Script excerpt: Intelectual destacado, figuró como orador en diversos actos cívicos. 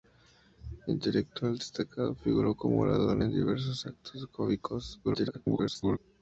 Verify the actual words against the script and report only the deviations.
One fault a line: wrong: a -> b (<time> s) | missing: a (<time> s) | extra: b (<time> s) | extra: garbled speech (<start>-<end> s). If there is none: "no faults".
extra: garbled speech (5.0-6.0 s)